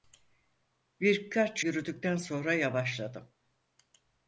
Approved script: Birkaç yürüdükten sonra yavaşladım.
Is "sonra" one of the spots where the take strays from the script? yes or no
no